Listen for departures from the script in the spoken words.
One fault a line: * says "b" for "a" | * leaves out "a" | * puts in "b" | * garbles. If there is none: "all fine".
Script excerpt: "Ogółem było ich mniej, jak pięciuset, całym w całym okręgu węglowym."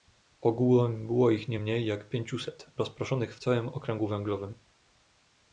* puts in "nie"
* says "rozproszonych" for "całym"